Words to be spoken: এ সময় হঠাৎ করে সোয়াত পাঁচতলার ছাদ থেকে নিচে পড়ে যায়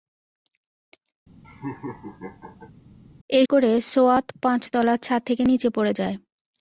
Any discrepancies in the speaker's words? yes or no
yes